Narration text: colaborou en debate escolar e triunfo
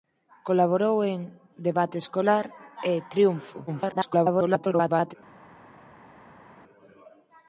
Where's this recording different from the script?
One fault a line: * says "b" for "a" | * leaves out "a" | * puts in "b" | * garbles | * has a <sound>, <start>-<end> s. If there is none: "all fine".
* garbles